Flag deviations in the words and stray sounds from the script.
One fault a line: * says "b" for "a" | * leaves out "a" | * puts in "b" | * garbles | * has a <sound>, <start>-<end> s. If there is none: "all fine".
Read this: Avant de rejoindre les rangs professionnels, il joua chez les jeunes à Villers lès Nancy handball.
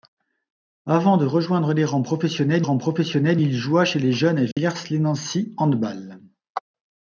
* puts in "rangs professionnels"
* has a dropout, 4.5-4.6 s